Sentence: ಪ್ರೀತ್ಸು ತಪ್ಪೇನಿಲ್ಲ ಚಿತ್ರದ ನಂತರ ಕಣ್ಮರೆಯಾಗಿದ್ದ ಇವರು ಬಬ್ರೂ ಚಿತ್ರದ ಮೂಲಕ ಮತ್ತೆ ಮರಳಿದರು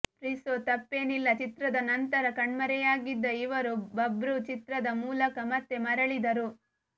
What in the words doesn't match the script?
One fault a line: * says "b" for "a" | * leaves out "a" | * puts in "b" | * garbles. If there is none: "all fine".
all fine